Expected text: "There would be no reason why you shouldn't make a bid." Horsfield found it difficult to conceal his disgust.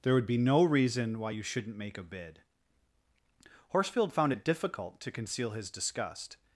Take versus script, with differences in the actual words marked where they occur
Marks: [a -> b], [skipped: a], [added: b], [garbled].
"There would be no reason why you shouldn't make a bid." Horsfield found it difficult to conceal his disgust.